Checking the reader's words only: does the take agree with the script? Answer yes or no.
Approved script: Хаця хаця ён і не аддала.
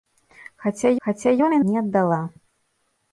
yes